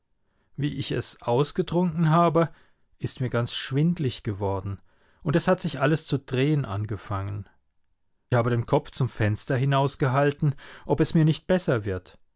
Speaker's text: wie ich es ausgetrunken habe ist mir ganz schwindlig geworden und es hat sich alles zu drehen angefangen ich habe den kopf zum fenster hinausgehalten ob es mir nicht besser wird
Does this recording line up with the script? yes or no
no